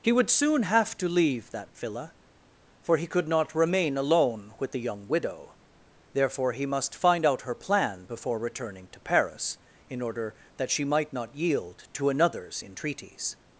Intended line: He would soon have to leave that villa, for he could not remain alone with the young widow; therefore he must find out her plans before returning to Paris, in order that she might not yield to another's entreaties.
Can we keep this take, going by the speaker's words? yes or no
no